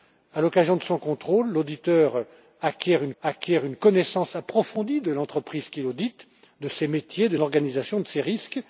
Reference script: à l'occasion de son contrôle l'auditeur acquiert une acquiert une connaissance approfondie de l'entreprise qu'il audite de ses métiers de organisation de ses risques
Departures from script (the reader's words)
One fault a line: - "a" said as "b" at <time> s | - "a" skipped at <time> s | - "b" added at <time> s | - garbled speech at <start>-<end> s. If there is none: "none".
none